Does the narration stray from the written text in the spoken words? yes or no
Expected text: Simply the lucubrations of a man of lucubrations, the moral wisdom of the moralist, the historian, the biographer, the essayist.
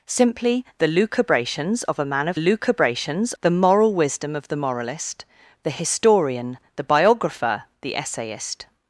no